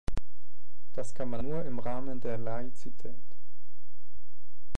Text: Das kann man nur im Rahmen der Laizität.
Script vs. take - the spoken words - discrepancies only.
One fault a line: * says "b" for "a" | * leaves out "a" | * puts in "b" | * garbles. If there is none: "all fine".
all fine